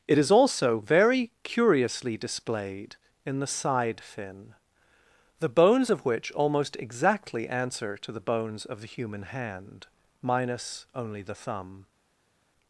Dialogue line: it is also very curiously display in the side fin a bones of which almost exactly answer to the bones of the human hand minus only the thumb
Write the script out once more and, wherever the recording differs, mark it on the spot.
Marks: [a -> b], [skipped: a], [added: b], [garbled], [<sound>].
it is also very curiously [display -> displayed] in the side fin [a -> the] bones of which almost exactly answer to the bones of the human hand minus only the thumb